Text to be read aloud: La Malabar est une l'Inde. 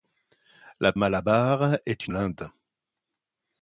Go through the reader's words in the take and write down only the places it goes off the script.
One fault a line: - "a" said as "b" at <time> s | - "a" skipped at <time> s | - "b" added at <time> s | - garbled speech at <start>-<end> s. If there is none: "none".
none